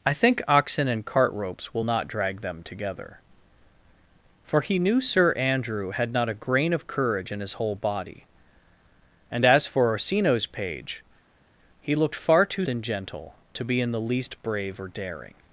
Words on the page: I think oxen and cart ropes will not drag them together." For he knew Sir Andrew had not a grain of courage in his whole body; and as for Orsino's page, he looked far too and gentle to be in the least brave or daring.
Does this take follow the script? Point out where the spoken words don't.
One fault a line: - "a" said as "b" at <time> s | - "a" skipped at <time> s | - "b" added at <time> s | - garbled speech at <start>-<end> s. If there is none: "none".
none